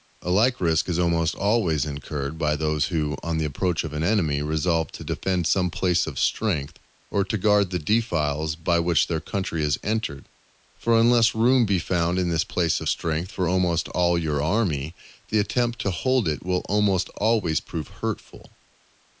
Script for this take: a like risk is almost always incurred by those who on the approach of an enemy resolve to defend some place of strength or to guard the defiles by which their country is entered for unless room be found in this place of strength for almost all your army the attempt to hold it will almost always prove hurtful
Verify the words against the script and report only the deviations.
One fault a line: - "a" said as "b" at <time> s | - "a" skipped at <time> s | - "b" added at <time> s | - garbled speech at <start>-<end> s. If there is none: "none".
none